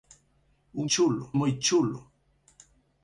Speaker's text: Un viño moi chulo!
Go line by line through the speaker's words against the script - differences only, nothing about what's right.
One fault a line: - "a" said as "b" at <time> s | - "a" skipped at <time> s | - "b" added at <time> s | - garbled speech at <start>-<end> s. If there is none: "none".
- "viño" said as "chulo" at 0.9 s